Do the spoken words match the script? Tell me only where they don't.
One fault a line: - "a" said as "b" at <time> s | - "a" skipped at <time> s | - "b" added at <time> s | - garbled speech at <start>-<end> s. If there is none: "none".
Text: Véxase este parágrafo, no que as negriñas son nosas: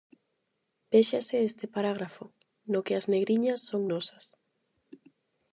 none